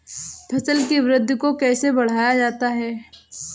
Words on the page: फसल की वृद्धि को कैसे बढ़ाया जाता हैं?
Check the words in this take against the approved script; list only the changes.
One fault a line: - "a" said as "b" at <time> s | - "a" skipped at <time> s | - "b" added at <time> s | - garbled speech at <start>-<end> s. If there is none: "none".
none